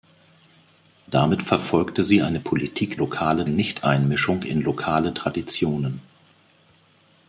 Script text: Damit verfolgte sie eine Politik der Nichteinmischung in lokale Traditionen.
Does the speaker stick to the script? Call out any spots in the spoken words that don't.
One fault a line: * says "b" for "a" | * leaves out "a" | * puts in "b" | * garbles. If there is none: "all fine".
* says "lokale" for "der"